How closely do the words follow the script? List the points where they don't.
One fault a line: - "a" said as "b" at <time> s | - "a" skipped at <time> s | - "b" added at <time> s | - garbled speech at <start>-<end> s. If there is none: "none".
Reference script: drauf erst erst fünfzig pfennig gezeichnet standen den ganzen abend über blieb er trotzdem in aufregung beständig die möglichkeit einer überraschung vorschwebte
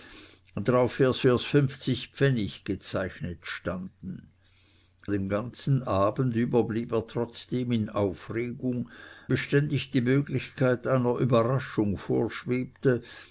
none